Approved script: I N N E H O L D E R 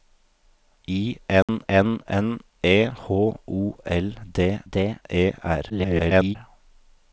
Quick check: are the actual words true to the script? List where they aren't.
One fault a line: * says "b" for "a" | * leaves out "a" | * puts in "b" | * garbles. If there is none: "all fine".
* puts in "N"
* puts in "D"
* garbles